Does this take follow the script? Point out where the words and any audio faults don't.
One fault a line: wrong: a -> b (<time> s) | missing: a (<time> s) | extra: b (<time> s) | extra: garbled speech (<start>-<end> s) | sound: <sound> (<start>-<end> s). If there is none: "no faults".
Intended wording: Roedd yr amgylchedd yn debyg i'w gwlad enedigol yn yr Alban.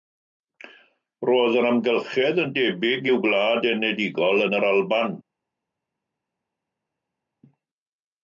no faults